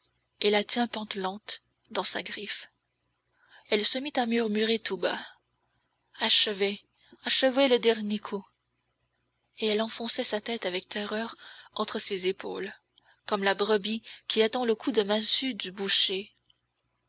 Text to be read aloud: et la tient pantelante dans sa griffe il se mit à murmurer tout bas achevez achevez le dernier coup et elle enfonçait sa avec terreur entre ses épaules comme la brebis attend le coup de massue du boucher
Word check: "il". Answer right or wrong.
wrong